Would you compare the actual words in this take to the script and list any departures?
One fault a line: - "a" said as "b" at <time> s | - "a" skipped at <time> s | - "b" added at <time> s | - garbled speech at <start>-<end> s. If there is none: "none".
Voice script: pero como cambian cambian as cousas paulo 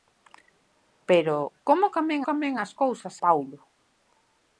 none